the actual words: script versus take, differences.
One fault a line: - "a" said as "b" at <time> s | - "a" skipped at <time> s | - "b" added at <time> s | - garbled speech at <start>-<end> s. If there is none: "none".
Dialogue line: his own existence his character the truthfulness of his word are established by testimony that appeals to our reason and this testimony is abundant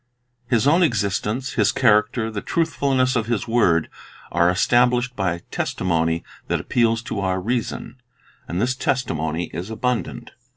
none